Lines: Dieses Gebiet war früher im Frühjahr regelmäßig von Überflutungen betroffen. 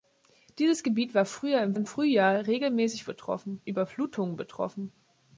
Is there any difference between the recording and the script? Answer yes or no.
yes